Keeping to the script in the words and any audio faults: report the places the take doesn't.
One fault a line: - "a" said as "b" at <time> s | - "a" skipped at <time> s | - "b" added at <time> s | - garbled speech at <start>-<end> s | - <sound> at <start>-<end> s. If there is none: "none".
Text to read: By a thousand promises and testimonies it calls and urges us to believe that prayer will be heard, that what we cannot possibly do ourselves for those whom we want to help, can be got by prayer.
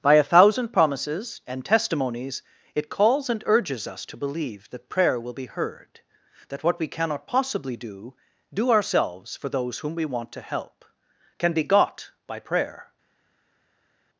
- "do" added at 8.5 s